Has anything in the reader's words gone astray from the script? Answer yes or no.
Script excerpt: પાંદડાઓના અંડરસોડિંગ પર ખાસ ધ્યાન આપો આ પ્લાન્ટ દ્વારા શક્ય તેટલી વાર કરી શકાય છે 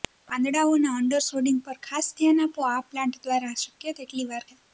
yes